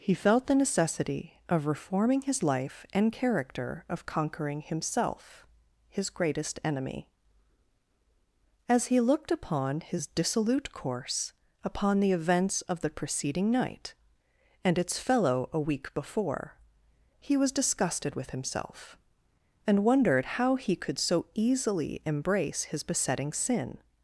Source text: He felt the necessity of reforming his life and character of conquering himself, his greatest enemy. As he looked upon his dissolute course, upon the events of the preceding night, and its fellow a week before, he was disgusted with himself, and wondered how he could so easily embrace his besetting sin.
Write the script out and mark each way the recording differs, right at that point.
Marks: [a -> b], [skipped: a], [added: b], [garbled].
He felt the necessity of reforming his life and character of conquering himself, his greatest enemy. As he looked upon his dissolute course, upon the events of the preceding night, and its fellow a week before, he was disgusted with himself, and wondered how he could so easily embrace his besetting sin.